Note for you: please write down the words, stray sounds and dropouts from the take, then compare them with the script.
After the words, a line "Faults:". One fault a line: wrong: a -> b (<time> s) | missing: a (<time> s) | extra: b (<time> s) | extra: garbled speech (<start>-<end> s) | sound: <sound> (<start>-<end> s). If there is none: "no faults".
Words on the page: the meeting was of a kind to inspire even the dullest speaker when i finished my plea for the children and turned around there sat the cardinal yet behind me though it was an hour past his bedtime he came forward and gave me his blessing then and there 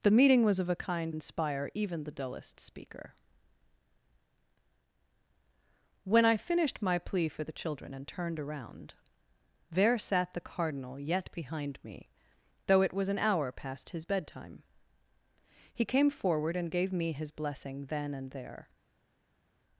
the meeting was of a kind inspire even the dullest speaker when i finished my plea for the children and turned around there sat the cardinal yet behind me though it was an hour past his bedtime he came forward and gave me his blessing then and there
Faults:
missing: to (1.1 s)